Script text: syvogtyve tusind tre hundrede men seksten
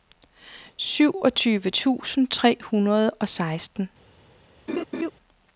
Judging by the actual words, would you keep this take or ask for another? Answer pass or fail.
fail